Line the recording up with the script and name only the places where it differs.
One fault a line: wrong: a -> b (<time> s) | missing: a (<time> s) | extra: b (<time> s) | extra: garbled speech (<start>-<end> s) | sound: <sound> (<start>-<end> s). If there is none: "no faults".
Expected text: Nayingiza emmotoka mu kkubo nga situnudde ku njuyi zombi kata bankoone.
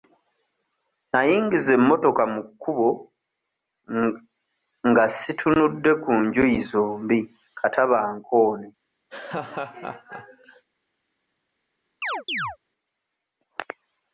sound: laugh (9.1-10.6 s)
sound: chirp (12.0-12.6 s)